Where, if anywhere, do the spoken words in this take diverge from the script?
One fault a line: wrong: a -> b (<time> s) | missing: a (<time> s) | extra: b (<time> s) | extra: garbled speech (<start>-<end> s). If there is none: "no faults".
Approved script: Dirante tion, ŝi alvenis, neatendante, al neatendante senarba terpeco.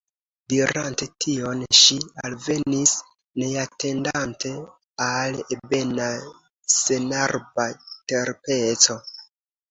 wrong: neatendante -> ebena (5.6 s)